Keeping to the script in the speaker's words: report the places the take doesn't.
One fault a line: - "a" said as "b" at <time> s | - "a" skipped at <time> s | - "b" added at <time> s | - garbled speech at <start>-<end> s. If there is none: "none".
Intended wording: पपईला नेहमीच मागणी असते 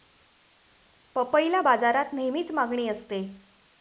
- "बाजारात" added at 1.6 s